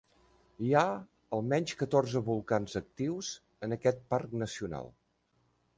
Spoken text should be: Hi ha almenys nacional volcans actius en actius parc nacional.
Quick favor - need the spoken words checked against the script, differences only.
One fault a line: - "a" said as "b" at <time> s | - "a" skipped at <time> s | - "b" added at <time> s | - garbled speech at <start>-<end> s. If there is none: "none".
- "nacional" said as "catorze" at 1.8 s
- "actius" said as "aquest" at 3.8 s